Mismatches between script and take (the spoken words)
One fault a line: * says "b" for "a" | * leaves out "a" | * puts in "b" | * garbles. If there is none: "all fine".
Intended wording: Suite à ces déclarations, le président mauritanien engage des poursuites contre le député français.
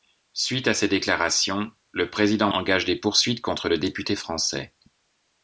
* leaves out "mauritanien"